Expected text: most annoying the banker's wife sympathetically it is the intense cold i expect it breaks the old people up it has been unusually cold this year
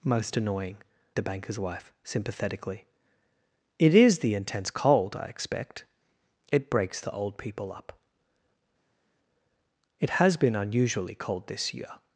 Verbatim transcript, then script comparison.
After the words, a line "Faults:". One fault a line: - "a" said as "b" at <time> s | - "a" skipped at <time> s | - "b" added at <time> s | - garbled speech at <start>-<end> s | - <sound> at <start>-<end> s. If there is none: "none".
most annoying the banker's wife sympathetically it is the intense cold i expect it breaks the old people up it has been unusually cold this year
Faults:
none